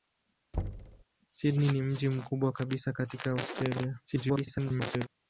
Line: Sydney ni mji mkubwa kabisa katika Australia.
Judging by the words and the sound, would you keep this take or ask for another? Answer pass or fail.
fail